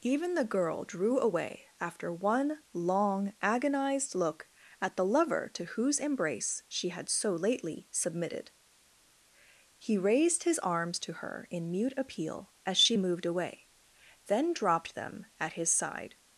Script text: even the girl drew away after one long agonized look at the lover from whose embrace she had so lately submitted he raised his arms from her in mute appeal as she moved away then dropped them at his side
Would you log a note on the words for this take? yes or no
yes